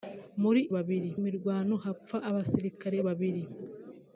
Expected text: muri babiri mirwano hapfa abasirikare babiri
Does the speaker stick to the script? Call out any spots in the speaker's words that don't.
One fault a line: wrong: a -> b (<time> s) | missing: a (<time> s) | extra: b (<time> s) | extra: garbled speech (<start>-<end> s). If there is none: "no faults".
no faults